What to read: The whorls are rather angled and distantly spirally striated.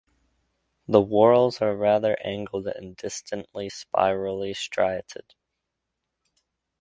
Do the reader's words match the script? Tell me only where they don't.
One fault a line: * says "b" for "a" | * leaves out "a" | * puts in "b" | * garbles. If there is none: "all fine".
all fine